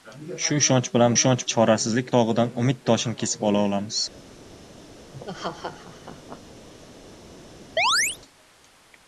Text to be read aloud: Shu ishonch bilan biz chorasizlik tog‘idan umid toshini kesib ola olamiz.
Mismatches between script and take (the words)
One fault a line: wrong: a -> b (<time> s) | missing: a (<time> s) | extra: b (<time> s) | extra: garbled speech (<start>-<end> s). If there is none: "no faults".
wrong: biz -> ishonch (1.1 s)